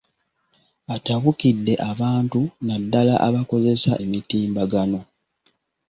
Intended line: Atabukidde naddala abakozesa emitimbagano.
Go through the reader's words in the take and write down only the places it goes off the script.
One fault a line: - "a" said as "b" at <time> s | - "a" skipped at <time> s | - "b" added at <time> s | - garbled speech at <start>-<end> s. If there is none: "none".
- "abantu" added at 1.9 s